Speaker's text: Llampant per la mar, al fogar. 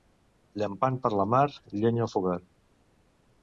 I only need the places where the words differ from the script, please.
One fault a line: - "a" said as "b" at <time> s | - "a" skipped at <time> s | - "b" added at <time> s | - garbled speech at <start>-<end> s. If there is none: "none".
- "llenya" added at 1.8 s